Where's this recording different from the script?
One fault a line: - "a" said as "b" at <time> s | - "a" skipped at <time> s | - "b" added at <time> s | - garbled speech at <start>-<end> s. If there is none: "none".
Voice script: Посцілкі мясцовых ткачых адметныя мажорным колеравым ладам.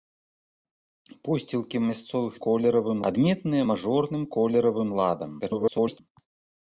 - "ткачых" said as "колеравым" at 2.5 s
- garbled speech at 5.4-6.0 s